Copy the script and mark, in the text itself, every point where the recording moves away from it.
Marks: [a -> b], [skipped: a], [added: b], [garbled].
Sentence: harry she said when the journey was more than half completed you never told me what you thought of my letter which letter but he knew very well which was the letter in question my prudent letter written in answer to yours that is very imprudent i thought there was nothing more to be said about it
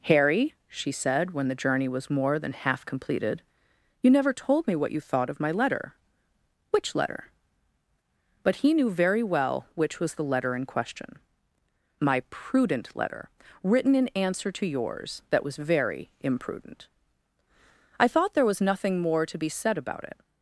harry she said when the journey was more than half completed you never told me what you thought of my letter which letter but he knew very well which was the letter in question my prudent letter written in answer to yours that [is -> was] very imprudent i thought there was nothing more to be said about it